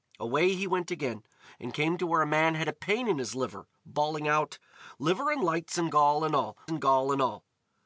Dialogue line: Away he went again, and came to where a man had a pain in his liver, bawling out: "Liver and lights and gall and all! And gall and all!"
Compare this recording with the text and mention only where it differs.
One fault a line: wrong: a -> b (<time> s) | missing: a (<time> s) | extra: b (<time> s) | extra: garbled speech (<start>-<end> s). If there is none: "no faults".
no faults